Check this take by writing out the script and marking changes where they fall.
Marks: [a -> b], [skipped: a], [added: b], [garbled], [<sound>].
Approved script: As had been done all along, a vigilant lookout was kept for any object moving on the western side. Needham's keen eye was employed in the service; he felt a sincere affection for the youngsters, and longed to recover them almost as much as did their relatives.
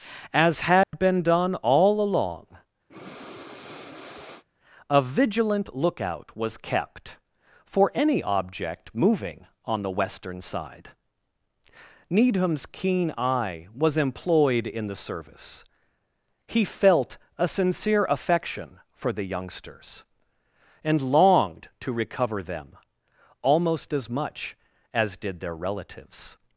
As had [dropout] been done all along, [breath] a vigilant lookout was kept for any object moving on the western side. Needham's keen eye was employed in the service; he felt a sincere affection for the youngsters, and longed to recover them almost as much as did their relatives.